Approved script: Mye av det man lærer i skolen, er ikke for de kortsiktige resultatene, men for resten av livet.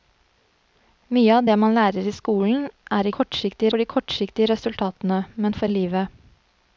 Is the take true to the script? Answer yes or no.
no